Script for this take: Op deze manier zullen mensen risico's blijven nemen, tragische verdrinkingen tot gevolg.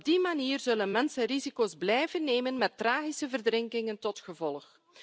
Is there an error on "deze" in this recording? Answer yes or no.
yes